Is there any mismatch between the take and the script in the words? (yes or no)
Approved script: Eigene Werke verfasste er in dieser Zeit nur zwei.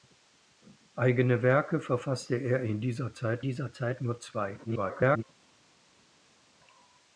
yes